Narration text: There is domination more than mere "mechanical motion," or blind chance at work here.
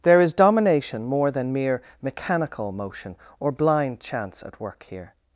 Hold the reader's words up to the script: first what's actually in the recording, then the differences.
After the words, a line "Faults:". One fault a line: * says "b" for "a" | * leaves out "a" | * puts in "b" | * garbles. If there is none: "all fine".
There is domination more than mere "mechanical motion," or blind chance at work here.
Faults:
all fine